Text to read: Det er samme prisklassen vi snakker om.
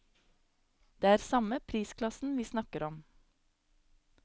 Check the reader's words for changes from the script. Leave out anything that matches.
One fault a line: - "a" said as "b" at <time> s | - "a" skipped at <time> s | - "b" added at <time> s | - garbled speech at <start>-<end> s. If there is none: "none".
none